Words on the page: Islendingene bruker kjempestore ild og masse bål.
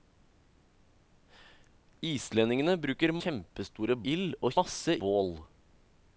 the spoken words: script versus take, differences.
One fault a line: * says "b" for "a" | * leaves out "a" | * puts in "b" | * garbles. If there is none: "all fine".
all fine